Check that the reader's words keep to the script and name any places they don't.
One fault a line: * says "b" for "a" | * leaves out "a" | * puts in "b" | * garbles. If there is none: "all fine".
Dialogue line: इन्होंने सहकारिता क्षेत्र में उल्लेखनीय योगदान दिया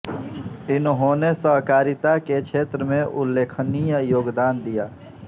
* puts in "के"